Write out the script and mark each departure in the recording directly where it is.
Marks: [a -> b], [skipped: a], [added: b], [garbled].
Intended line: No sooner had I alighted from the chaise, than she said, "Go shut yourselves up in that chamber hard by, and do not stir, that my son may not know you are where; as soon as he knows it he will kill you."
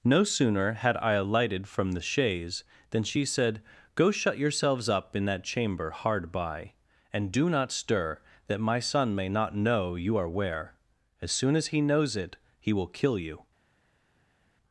No sooner had I alighted from the chaise, than she said, "Go shut yourselves up in that chamber hard by, and do not stir, that my son may not know you are where; as soon as he knows it he will kill you."